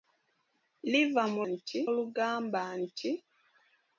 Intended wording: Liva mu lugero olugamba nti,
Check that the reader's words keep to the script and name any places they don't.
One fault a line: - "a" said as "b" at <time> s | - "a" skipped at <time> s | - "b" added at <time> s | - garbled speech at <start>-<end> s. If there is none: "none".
- "lugero" said as "nti" at 1.5 s